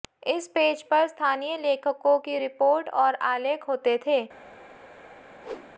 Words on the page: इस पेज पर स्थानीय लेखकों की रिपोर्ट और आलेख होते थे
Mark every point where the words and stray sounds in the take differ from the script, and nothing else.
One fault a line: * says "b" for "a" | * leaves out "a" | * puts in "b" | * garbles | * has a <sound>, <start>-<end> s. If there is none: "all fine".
* has a whoosh, 5.4-5.7 s